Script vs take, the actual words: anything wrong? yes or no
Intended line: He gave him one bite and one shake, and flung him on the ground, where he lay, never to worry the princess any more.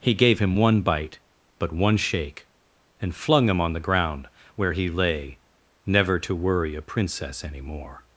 yes